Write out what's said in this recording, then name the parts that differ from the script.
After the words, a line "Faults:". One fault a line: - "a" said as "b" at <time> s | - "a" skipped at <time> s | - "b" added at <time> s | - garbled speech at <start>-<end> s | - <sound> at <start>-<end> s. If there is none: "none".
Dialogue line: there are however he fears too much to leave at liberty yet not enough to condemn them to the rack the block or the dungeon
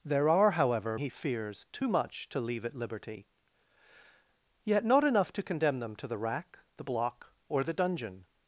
there are however he fears too much to leave at liberty yet not enough to condemn them to the rack the block or the dungeon
Faults:
none